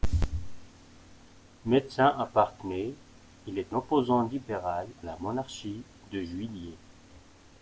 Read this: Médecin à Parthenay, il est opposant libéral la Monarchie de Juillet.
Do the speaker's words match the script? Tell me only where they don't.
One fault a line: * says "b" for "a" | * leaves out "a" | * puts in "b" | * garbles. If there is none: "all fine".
all fine